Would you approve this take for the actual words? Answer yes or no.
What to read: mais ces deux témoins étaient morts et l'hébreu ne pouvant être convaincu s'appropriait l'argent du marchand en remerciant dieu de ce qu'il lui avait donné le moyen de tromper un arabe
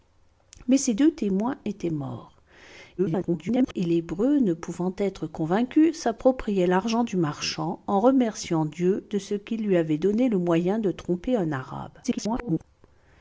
no